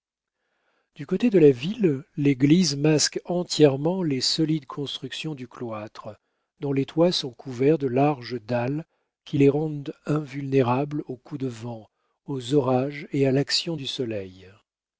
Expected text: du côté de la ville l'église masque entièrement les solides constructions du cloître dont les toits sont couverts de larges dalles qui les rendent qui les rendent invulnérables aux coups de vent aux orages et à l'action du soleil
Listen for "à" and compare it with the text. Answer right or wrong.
right